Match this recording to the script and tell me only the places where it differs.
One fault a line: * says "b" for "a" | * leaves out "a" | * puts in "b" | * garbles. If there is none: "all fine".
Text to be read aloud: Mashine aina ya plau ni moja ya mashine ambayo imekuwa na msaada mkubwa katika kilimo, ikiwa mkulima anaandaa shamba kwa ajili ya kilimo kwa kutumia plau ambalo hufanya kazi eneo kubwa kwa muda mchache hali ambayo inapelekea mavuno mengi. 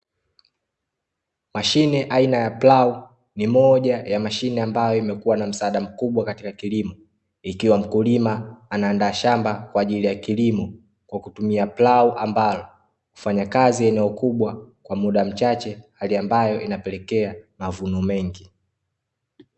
all fine